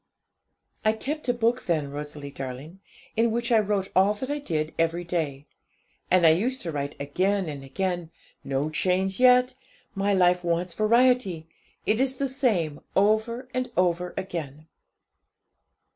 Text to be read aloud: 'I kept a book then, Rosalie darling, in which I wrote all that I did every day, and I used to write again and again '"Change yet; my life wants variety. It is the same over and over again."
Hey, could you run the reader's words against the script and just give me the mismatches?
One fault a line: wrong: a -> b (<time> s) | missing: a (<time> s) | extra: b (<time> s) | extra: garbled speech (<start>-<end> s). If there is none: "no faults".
extra: No (8.4 s)